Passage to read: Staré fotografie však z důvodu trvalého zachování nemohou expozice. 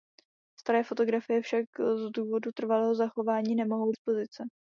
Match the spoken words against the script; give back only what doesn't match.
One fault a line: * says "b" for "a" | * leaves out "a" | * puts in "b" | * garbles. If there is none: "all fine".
all fine